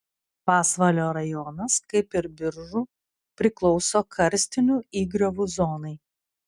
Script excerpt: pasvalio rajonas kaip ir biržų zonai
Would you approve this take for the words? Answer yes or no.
no